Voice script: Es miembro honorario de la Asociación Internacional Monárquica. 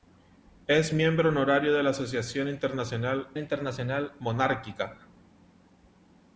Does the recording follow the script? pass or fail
fail